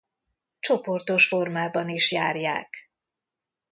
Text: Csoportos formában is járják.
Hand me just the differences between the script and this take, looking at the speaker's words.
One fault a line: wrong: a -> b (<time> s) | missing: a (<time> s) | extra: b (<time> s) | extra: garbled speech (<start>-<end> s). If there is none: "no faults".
no faults